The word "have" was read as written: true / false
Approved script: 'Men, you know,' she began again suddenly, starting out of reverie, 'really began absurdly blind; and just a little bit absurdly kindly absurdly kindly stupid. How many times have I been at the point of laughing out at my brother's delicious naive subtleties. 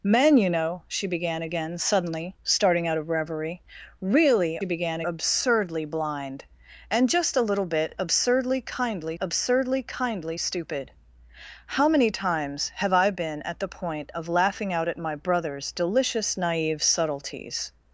true